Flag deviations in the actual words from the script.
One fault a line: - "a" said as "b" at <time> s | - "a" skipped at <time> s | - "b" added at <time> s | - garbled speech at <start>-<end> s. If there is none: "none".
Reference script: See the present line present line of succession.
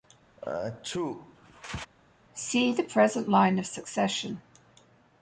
- "present line" skipped at 3.6 s